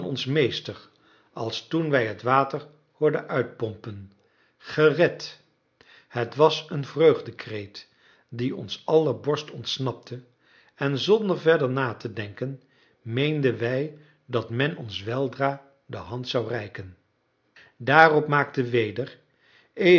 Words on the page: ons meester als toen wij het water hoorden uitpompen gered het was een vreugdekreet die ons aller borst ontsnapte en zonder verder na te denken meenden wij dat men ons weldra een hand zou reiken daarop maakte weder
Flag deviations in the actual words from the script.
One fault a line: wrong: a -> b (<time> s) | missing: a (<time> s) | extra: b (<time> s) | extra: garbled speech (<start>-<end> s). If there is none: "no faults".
wrong: een -> de (15.8 s)